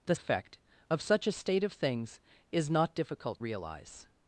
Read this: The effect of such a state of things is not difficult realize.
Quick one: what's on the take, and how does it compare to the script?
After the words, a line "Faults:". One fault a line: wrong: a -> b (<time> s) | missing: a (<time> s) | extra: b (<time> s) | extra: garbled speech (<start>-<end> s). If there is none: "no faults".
The effect of such a state of things is not difficult realize.
Faults:
no faults